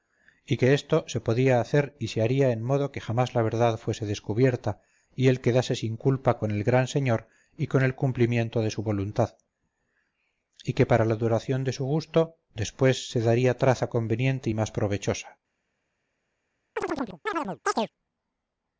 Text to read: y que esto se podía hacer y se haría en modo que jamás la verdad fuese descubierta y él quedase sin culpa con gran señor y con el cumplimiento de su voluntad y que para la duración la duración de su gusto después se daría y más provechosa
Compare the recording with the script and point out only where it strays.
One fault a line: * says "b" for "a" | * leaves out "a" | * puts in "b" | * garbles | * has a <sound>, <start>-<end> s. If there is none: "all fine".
* puts in "el"
* leaves out "la duración"
* puts in "traza conveniente"
* has a chirp, 16.8-17.9 s